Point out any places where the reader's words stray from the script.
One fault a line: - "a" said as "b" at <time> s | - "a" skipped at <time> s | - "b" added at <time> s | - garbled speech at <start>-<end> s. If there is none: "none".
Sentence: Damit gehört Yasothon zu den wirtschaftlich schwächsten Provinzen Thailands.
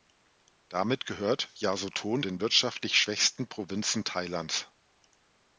- "zu" skipped at 2.2 s